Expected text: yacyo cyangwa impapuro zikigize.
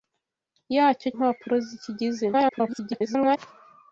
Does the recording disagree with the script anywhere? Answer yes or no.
yes